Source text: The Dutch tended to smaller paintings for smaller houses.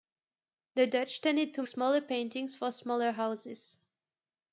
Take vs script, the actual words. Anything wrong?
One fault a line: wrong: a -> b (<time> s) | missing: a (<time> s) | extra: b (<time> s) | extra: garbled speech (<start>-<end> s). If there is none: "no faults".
no faults